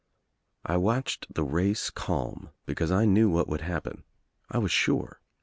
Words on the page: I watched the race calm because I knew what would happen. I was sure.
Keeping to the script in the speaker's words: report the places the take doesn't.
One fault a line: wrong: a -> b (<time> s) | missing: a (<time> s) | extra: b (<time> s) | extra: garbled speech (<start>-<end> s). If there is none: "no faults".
no faults